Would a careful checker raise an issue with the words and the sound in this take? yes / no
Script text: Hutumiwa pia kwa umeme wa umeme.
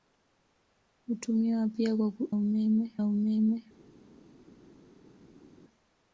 no